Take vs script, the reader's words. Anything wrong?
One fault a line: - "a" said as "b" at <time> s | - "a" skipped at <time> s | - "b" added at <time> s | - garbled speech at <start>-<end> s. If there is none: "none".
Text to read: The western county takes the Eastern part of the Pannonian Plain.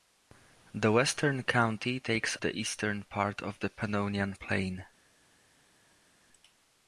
none